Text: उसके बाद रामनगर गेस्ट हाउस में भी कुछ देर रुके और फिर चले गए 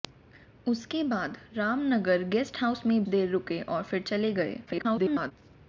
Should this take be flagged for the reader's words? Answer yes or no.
yes